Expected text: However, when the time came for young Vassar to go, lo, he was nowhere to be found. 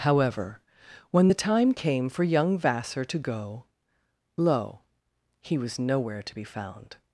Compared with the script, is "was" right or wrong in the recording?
right